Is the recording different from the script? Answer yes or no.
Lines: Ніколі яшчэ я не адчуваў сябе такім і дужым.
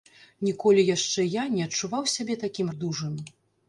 no